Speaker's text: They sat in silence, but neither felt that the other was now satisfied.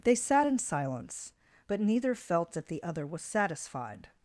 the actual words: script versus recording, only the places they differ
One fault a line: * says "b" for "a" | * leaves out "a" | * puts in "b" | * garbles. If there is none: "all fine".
* leaves out "now"